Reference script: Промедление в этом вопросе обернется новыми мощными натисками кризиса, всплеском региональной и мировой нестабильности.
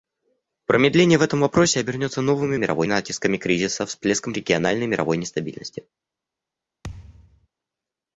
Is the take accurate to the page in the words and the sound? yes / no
no